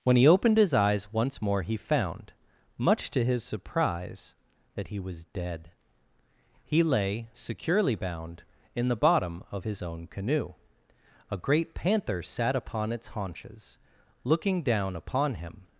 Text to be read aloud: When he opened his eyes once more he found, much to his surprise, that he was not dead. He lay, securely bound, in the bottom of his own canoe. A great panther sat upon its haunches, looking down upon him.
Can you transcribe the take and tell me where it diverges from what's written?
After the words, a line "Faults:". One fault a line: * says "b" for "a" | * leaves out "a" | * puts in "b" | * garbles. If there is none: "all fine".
When he opened his eyes once more he found, much to his surprise, that he was dead. He lay, securely bound, in the bottom of his own canoe. A great panther sat upon its haunches, looking down upon him.
Faults:
* leaves out "not"